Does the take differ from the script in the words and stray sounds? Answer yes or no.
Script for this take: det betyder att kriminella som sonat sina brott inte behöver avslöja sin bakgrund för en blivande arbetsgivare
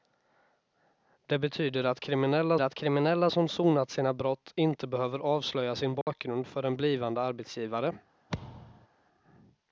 yes